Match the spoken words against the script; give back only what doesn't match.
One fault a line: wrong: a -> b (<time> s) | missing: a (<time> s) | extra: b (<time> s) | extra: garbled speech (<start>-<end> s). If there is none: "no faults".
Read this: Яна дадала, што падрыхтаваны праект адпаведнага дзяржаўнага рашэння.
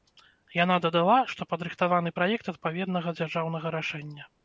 no faults